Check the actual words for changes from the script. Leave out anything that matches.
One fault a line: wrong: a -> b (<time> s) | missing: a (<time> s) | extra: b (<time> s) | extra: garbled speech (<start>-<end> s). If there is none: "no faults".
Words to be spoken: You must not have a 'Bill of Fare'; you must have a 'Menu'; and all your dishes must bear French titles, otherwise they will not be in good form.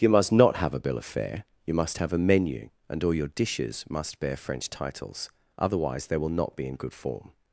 no faults